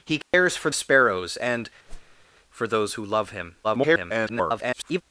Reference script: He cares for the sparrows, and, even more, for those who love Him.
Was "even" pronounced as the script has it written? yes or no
no